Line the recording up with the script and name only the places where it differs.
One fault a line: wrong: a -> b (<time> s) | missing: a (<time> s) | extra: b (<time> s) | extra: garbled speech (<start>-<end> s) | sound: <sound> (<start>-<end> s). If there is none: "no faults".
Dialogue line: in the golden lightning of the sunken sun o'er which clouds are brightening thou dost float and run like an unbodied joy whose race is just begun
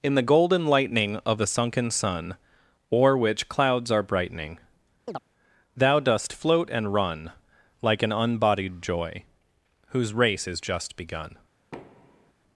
sound: chirp (5.1-5.2 s)
sound: thud (11.7-12.3 s)